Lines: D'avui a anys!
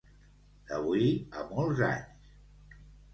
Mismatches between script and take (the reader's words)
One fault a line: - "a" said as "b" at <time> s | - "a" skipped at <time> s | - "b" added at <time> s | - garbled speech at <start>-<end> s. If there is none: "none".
- "molts" added at 1.5 s